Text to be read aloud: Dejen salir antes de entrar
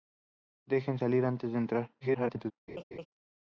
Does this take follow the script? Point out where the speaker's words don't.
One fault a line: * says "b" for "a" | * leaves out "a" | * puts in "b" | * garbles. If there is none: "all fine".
* garbles